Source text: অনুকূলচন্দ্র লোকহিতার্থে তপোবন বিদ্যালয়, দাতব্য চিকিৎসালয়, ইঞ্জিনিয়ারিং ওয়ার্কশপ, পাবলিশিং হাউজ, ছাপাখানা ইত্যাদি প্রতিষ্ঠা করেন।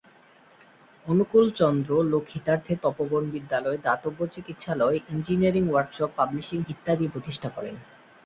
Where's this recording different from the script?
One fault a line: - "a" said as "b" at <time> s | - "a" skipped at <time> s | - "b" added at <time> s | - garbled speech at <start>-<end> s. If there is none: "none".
- "হাউজ ছাপাখানা" skipped at 6.6 s